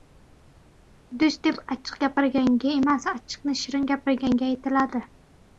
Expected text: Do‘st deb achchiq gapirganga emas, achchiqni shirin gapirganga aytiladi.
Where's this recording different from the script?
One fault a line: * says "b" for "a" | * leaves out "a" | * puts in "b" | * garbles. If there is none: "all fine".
all fine